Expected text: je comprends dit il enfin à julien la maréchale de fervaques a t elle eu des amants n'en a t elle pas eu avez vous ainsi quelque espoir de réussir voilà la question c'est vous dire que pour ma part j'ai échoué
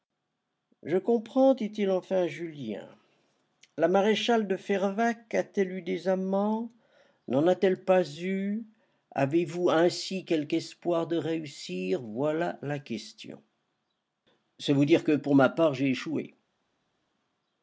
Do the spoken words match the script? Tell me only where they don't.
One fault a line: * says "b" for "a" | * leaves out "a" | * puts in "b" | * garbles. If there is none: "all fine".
all fine